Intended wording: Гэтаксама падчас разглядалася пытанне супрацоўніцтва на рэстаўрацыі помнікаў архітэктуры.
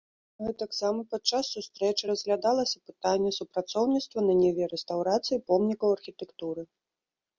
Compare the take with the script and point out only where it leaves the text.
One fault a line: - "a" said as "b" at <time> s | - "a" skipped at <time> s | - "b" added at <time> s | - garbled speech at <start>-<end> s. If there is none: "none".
- "сустрэчы" added at 1.6 s
- "ніве" added at 4.4 s